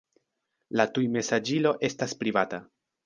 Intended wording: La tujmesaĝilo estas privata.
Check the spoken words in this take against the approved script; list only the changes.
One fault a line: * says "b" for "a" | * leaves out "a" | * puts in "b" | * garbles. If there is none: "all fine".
all fine